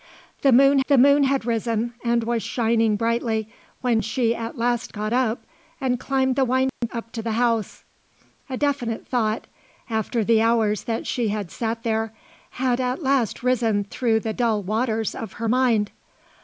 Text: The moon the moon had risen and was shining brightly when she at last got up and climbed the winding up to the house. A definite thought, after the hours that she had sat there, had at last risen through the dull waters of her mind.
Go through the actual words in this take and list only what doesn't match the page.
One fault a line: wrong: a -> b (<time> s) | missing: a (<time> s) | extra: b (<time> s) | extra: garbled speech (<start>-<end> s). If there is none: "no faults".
no faults